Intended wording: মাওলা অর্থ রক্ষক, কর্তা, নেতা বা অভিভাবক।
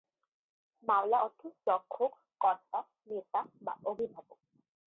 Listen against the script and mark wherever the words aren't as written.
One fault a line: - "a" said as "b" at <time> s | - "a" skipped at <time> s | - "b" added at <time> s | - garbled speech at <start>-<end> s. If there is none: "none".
none